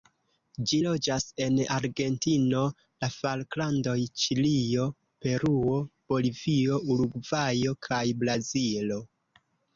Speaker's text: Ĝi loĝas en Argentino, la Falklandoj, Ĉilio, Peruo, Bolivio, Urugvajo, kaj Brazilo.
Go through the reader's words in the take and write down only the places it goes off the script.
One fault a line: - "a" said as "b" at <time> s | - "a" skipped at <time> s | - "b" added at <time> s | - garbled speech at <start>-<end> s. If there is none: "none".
none